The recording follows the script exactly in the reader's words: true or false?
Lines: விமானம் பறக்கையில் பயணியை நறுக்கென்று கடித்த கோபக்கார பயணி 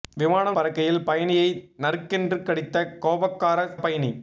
true